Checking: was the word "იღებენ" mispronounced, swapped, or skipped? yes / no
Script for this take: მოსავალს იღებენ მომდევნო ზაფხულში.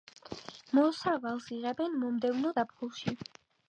no